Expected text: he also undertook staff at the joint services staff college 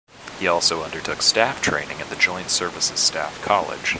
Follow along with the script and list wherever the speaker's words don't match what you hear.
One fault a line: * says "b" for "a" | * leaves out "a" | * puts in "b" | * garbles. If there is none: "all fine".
* puts in "training"